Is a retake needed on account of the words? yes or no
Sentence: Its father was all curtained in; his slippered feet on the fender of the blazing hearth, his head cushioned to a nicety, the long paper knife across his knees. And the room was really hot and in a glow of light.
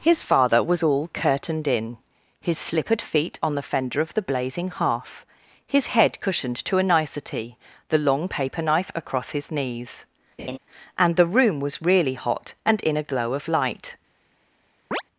yes